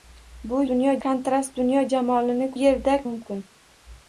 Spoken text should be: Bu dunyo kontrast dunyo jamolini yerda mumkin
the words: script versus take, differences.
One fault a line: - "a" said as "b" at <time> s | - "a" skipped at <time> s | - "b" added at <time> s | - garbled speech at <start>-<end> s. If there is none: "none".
none